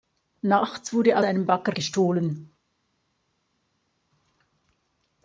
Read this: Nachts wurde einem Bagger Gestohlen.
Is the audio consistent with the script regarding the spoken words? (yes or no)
yes